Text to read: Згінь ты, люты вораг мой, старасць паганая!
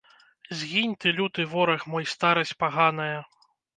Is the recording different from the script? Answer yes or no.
no